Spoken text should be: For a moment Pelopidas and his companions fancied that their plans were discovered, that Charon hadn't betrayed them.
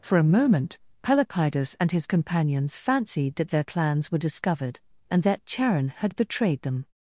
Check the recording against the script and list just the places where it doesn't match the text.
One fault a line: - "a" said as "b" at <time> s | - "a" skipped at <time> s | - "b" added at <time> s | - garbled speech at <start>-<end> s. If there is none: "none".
- "and" added at 5.1 s
- "hadn't" said as "had" at 5.9 s